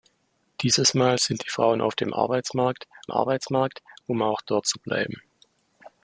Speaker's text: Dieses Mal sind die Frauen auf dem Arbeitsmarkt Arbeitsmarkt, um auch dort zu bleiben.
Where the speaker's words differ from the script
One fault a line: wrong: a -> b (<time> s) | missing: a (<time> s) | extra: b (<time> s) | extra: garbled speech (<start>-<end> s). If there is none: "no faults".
no faults